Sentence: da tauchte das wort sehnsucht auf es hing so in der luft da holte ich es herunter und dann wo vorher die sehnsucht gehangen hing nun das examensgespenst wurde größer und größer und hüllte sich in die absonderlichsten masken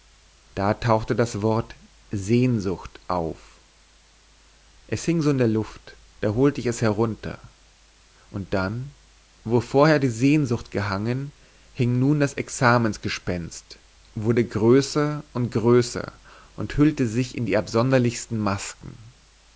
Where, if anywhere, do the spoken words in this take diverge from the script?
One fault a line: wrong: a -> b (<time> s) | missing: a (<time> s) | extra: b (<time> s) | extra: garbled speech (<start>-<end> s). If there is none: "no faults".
no faults